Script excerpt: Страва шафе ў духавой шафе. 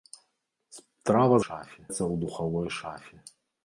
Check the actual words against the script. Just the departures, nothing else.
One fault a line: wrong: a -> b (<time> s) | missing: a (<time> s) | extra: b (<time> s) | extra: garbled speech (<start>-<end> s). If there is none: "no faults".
no faults